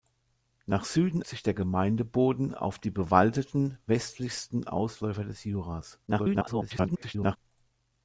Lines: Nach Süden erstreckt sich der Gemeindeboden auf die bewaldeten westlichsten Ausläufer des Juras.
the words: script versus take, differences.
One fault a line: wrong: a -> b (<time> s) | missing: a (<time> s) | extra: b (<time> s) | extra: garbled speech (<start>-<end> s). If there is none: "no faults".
missing: erstreckt (1.2 s)
extra: garbled speech (6.1-7.4 s)